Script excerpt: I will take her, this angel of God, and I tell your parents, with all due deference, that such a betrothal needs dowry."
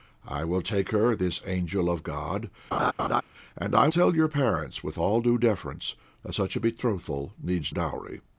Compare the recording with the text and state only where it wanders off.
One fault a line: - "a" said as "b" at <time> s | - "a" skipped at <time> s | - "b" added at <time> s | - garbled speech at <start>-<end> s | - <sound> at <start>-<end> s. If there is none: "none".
- laugh at 2.7-3.2 s